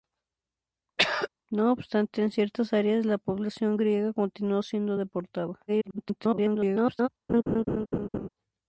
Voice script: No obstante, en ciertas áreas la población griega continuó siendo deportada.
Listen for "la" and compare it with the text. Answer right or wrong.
right